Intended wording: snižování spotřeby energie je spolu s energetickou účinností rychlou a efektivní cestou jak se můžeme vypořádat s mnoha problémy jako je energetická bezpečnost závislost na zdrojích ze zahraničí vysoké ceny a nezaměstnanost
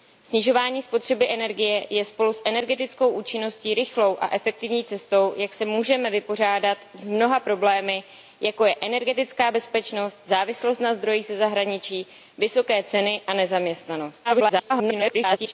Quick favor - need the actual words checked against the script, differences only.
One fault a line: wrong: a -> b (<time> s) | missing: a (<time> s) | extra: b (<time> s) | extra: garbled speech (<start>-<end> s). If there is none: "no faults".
extra: garbled speech (14.2-15.5 s)